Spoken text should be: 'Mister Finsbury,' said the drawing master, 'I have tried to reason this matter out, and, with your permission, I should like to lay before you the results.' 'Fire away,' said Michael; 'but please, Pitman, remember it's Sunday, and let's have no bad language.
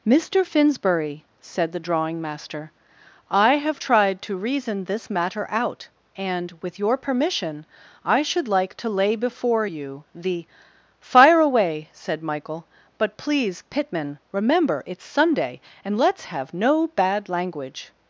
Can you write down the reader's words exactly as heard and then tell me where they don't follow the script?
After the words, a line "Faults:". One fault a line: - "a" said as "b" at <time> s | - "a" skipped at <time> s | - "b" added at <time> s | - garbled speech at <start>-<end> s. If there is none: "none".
'Mister Finsbury,' said the drawing master, 'I have tried to reason this matter out, and, with your permission, I should like to lay before you the.' 'Fire away,' said Michael; 'but please, Pitman, remember it's Sunday, and let's have no bad language.
Faults:
- "results" skipped at 10.5 s